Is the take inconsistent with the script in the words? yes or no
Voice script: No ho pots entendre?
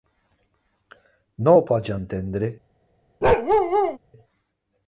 no